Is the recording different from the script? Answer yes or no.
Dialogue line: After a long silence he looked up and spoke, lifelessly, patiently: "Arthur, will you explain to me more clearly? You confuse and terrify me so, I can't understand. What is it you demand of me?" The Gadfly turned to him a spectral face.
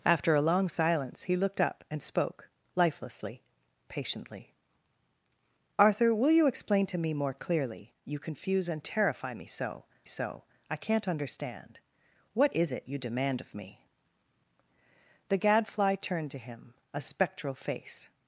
yes